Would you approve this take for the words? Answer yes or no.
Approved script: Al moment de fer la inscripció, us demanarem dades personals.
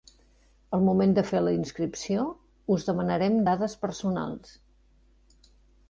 yes